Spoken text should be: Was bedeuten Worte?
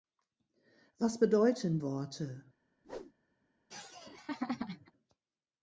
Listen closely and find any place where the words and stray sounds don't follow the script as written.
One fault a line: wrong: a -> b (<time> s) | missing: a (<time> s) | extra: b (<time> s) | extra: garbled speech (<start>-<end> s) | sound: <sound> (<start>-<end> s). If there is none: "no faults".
sound: whoosh (2.8-3.1 s)
sound: laugh (3.7-4.9 s)